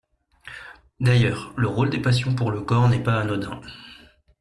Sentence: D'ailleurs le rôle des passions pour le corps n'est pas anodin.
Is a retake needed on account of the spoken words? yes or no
no